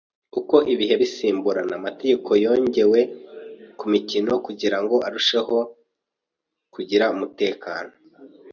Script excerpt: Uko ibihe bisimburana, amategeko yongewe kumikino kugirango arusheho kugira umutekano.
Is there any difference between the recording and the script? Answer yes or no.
no